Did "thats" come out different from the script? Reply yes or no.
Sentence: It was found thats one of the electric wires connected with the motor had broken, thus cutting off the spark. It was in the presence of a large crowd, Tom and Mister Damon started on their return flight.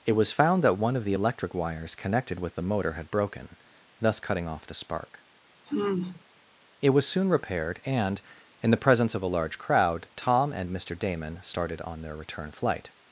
yes